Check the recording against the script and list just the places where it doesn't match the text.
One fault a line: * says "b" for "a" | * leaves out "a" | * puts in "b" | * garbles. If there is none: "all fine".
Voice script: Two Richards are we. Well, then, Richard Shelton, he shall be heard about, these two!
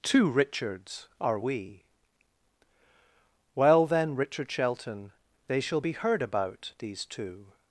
* says "they" for "he"